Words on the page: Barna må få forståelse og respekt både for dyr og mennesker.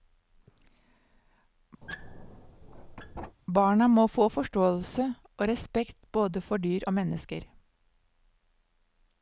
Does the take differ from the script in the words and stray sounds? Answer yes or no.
yes